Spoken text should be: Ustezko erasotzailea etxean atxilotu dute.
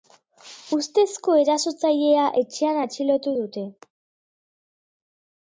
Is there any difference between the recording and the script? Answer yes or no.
no